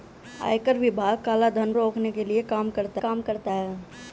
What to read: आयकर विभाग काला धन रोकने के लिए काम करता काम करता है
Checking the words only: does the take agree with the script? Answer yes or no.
yes